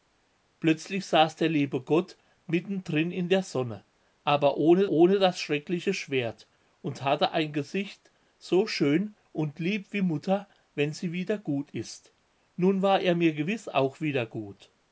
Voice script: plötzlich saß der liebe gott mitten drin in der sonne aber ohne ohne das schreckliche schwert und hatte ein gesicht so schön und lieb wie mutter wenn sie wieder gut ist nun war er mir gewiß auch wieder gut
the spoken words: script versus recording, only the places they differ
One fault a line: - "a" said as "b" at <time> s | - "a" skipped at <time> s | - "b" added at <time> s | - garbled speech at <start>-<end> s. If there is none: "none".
none